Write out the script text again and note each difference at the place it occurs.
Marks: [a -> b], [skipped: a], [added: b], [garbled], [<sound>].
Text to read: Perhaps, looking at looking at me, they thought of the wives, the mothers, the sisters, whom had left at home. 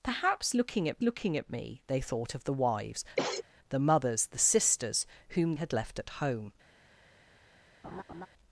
Perhaps, looking at looking at me, they thought of the wives, [cough] the mothers, the sisters, whom had left at home. [laugh]